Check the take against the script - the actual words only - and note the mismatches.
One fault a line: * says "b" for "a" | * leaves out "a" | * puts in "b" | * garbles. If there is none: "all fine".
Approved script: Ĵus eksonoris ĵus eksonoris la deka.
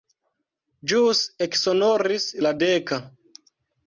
* leaves out "ĵus eksonoris"